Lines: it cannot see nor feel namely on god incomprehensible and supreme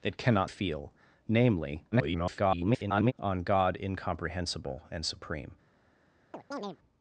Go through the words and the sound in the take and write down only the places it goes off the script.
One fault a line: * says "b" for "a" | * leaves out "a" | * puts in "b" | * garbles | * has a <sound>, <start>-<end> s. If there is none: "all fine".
* leaves out "see nor"
* garbles
* has a chirp, 6.3-6.8 s